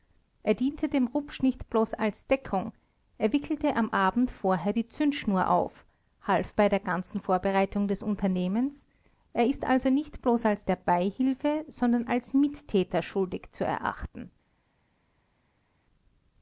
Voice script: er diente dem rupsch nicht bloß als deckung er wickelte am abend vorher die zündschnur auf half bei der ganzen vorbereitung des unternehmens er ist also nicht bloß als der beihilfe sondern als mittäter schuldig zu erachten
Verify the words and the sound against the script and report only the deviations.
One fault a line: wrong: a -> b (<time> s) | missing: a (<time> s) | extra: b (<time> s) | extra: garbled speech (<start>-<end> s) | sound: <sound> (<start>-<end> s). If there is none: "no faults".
no faults